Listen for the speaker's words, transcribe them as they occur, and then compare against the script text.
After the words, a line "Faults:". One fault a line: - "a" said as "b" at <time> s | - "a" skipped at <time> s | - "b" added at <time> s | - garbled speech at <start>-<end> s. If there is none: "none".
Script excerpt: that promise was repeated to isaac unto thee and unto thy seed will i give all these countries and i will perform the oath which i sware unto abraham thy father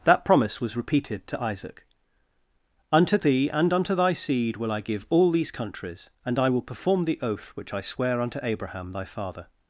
that promise was repeated to isaac unto thee and unto thy seed will i give all these countries and i will perform the oath which i sware unto abraham thy father
Faults:
none